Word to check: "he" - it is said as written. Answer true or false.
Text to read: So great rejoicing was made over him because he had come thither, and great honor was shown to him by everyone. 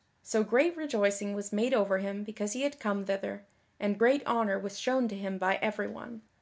true